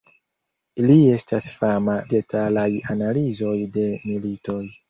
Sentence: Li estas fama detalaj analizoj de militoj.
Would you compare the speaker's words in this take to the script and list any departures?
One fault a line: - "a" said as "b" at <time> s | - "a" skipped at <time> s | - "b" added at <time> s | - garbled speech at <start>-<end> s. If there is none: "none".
none